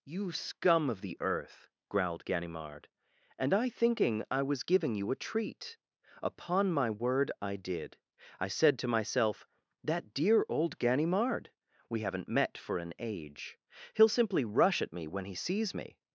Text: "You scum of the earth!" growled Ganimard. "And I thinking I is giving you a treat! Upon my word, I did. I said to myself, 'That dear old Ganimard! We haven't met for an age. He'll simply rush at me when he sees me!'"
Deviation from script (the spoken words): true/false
true